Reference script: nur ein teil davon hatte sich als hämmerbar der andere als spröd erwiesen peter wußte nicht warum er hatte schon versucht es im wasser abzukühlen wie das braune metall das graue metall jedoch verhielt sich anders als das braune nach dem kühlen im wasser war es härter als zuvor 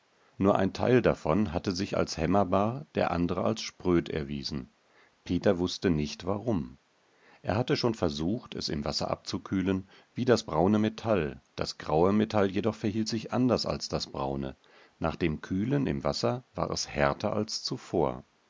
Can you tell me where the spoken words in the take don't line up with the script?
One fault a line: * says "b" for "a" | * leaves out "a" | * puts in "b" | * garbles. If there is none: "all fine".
all fine